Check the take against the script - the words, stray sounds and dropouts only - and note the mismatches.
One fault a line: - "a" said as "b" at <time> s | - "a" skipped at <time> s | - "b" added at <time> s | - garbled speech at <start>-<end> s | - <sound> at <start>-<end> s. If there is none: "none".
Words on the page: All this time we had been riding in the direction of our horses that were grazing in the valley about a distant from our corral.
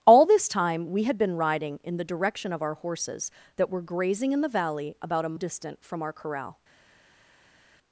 none